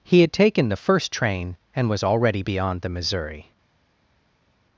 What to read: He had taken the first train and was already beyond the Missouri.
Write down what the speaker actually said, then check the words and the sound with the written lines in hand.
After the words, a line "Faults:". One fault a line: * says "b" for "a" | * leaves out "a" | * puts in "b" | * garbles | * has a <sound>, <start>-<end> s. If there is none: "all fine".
He had taken the first train and was already beyond the Missouri.
Faults:
all fine